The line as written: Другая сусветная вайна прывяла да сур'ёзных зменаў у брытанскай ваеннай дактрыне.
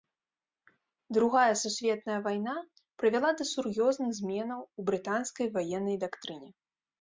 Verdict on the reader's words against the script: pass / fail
pass